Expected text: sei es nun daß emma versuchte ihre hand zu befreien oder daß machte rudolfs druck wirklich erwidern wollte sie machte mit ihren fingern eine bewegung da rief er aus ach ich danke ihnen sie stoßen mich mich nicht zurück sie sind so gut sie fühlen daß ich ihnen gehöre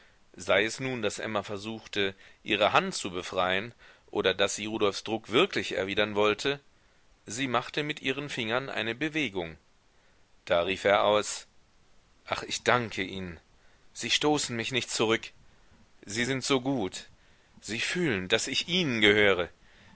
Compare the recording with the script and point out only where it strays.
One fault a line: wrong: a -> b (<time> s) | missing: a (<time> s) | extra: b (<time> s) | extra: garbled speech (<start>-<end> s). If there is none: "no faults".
wrong: machte -> sie (4.5 s)
missing: mich (14.7 s)